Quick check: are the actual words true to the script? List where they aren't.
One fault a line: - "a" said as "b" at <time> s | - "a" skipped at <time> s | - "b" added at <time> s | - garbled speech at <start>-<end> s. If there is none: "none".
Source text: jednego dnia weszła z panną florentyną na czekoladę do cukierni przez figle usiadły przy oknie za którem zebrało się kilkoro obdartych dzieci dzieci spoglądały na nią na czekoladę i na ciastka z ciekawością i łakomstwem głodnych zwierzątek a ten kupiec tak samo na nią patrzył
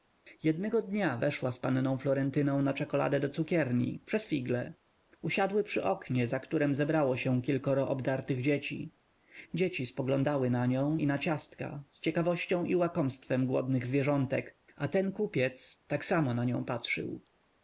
- "na czekoladę" skipped at 11.0 s